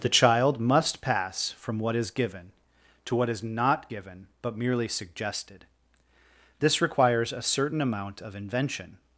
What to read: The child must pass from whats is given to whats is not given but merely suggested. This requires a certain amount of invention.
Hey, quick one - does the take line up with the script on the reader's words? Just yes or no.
no